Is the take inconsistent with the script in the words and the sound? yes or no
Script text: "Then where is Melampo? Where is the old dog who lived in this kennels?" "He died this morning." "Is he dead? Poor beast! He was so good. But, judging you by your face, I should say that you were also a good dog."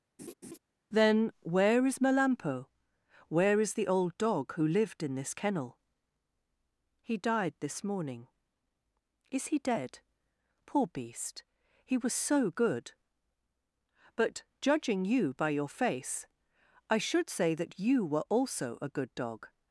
yes